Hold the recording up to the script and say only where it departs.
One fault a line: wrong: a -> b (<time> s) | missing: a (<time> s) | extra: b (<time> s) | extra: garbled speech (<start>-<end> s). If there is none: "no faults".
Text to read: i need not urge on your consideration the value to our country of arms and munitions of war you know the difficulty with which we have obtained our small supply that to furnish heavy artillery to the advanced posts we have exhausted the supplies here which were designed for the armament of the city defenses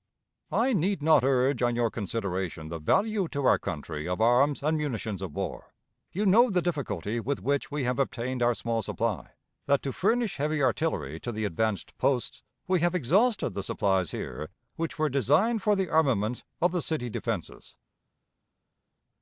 no faults